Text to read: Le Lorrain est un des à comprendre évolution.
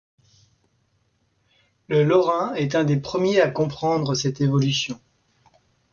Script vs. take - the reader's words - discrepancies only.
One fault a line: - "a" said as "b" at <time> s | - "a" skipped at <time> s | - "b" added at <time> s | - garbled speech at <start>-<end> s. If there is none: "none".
- "premiers" added at 3.0 s
- "cette" added at 4.2 s